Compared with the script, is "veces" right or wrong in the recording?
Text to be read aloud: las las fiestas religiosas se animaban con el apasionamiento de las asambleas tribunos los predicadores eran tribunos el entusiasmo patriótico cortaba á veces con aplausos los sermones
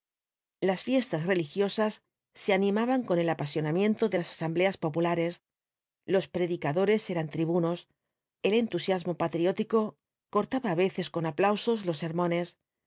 right